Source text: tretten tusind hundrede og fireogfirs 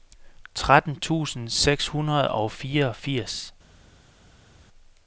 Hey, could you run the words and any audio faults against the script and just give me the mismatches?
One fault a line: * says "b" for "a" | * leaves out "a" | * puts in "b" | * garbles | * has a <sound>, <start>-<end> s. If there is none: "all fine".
* puts in "seks"